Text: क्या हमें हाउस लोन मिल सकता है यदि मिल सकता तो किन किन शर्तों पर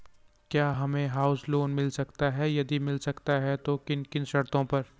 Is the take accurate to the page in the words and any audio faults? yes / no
no